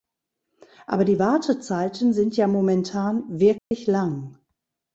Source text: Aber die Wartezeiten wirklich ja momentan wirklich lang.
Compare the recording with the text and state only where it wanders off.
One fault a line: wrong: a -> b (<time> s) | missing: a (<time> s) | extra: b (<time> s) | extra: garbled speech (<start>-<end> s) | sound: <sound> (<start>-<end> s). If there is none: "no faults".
wrong: wirklich -> sind (2.1 s)
sound: dropout (3.6-3.7 s)